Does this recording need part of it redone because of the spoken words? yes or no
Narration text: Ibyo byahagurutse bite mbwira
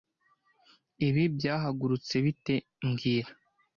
yes